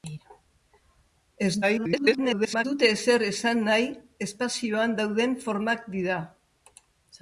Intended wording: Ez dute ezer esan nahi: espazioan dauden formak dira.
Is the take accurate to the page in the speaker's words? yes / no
no